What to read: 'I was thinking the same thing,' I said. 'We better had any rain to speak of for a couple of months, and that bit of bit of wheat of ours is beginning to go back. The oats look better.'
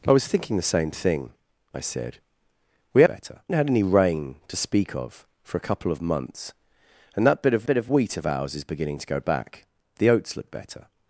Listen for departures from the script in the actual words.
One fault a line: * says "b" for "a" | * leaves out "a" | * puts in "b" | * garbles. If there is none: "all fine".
all fine